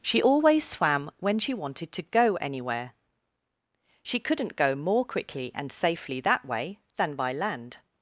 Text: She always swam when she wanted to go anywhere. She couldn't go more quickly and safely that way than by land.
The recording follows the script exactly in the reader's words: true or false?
true